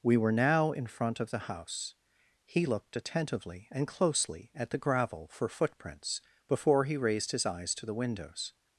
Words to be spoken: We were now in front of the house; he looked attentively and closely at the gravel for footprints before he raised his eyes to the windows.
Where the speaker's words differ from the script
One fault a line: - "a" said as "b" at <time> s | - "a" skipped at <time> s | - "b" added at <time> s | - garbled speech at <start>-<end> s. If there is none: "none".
none